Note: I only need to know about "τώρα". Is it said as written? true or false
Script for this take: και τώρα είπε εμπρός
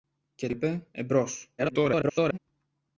false